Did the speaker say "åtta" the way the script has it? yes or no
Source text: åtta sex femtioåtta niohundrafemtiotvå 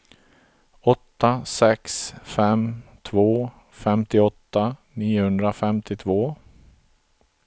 yes